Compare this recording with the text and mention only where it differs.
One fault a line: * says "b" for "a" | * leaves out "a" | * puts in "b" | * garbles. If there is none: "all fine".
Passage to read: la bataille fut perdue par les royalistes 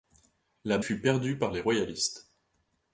* leaves out "bataille"